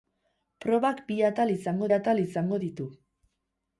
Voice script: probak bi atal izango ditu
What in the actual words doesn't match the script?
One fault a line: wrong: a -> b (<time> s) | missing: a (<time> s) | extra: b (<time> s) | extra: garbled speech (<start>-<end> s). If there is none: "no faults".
extra: atal izango (2.0 s)